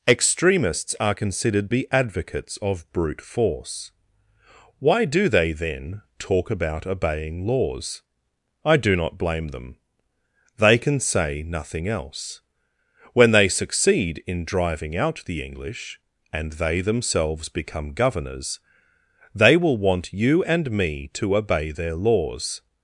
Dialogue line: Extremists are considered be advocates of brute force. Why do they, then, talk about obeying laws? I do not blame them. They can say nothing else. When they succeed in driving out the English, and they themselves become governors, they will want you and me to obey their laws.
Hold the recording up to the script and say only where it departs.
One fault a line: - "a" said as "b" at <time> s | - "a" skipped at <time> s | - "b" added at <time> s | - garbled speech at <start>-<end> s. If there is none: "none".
none